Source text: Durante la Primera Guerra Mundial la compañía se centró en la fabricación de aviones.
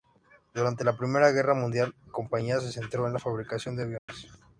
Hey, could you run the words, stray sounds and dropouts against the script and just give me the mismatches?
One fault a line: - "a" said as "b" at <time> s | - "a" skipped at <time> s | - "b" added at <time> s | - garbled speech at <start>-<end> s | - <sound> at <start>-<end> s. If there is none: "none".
- "la" skipped at 1.9 s
- dropout at 4.0-4.1 s